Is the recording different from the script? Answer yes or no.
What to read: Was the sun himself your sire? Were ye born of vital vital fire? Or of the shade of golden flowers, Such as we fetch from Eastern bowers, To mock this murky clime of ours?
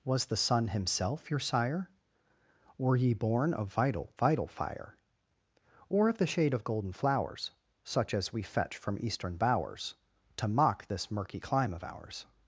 no